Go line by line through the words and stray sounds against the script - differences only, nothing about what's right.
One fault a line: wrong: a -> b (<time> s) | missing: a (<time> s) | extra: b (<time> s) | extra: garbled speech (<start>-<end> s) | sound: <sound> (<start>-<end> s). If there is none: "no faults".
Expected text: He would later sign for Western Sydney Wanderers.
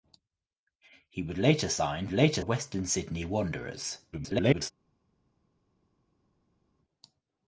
wrong: for -> later (2.1 s)
extra: garbled speech (4.1-4.7 s)